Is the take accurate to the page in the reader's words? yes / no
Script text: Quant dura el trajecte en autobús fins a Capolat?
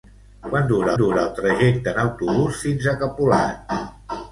no